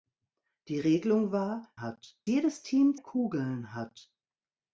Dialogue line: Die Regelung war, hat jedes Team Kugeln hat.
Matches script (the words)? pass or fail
pass